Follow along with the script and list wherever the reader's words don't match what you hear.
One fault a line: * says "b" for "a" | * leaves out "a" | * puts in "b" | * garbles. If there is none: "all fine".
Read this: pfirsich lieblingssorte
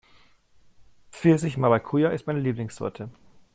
* puts in "maracuja ist meine"